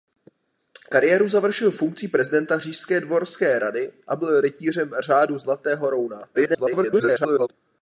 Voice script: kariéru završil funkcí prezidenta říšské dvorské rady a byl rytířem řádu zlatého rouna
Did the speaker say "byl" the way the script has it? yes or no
yes